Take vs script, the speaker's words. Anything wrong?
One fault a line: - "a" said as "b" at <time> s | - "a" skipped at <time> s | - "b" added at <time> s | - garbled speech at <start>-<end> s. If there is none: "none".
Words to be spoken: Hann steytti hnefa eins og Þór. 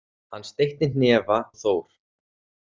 - "eins" skipped at 1.4 s